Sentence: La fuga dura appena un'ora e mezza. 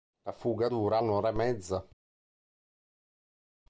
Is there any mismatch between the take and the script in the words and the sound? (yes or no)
yes